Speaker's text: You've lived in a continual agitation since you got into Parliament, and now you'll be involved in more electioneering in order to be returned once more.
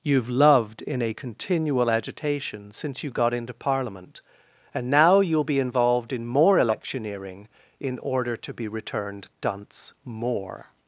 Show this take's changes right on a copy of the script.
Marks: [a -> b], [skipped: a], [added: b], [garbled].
You've [lived -> loved] in a continual agitation since you got into Parliament, and now you'll be involved in more electioneering in order to be returned [once -> dunce] more.